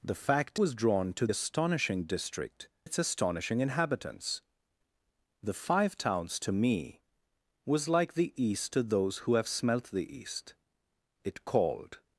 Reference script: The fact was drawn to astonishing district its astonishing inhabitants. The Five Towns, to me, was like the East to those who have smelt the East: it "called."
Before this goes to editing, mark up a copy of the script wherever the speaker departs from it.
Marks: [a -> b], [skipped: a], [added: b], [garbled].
The fact was drawn to astonishing district its astonishing inhabitants. The Five Towns, to me, was like the East to those who have smelt the East: it "called."